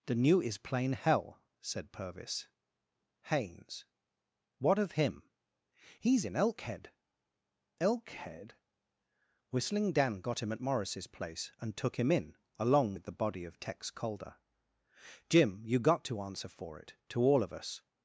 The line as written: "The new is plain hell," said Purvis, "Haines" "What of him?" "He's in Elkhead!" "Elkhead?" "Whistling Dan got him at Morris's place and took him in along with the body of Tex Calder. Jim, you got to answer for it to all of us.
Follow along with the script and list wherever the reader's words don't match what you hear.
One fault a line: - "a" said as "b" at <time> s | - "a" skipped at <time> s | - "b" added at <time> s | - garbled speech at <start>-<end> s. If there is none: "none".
none